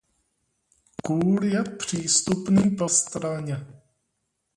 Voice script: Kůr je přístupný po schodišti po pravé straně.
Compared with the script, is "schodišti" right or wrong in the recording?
wrong